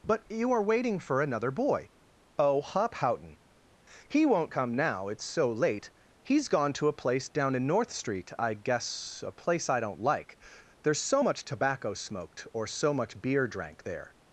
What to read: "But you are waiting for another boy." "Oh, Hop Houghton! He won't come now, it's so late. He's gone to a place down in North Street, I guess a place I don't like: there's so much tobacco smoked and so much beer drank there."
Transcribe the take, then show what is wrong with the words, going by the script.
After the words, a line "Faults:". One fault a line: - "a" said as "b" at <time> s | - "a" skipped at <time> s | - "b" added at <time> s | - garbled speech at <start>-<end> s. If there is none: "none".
"But you are waiting for another boy." "Oh, Hop Houghton! He won't come now, it's so late. He's gone to a place down in North Street, I guess a place I don't like: there's so much tobacco smoked or so much beer drank there."
Faults:
- "and" said as "or" at 12.5 s